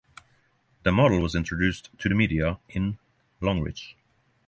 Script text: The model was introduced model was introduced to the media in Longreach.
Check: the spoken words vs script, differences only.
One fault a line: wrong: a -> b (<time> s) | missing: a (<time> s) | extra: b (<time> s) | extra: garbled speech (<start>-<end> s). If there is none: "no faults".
missing: model was introduced (1.9 s)